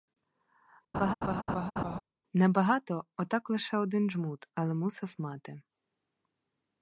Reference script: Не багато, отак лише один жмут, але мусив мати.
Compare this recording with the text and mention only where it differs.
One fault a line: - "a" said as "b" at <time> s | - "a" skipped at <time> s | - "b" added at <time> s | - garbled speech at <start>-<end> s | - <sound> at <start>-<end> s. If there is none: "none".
- laugh at 0.9-2.0 s